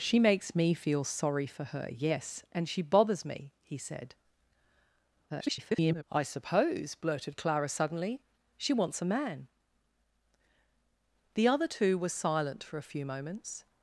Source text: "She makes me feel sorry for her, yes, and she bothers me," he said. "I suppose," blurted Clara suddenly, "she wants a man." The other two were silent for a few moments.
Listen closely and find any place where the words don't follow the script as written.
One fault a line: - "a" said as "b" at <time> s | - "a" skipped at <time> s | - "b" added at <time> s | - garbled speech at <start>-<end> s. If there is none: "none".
- garbled speech at 5.3-6.0 s